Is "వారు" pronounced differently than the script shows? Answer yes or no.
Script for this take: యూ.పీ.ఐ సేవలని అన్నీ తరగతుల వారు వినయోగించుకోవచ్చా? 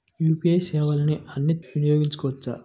yes